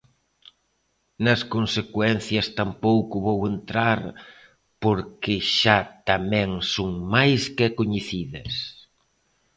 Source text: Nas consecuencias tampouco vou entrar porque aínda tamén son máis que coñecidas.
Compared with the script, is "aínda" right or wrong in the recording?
wrong